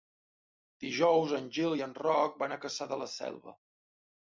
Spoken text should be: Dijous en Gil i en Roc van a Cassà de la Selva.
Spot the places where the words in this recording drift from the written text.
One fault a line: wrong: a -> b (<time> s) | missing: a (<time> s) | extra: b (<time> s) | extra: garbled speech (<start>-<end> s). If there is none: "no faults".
no faults